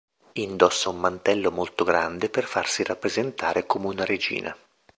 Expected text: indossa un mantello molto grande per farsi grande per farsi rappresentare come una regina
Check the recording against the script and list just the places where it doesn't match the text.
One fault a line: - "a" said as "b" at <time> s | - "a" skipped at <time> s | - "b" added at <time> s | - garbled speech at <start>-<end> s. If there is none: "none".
- "grande per farsi" skipped at 2.8 s